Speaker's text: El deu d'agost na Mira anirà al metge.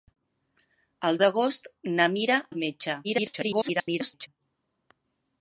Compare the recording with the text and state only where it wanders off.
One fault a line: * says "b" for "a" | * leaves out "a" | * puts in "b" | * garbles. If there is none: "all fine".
* leaves out "deu"
* leaves out "anirà"
* garbles